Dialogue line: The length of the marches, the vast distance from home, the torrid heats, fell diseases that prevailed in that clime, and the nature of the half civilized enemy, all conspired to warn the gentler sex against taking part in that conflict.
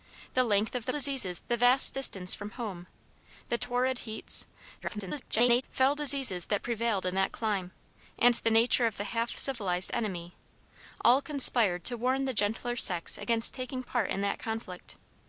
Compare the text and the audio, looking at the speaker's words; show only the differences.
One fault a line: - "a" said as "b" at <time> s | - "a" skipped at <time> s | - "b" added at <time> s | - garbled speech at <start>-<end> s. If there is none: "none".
- "marches" said as "diseases" at 0.9 s
- garbled speech at 4.8-5.6 s